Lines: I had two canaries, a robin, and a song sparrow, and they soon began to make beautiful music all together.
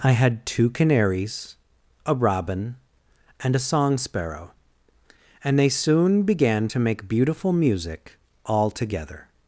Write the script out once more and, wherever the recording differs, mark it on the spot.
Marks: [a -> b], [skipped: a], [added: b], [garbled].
I had two canaries, a robin, and a song sparrow, and they soon began to make beautiful music all together.